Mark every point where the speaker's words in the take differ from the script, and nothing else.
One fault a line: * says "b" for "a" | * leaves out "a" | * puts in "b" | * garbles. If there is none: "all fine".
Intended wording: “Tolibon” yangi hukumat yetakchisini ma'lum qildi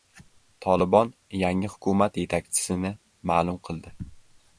all fine